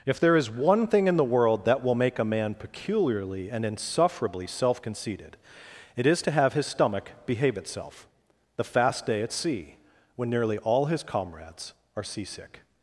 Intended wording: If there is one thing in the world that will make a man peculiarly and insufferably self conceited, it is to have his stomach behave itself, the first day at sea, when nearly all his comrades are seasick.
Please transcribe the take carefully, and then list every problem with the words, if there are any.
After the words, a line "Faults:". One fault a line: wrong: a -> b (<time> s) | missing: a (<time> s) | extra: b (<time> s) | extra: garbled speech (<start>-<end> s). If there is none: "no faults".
If there is one thing in the world that will make a man peculiarly and insufferably self conceited, it is to have his stomach behave itself, the fast day at sea, when nearly all his comrades are seasick.
Faults:
wrong: first -> fast (8.6 s)